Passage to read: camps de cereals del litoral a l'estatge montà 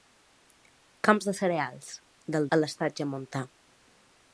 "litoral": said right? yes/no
no